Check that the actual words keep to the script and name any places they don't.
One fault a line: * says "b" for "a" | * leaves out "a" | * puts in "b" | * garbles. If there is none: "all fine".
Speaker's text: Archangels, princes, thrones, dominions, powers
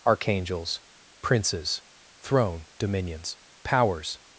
* says "throne" for "thrones"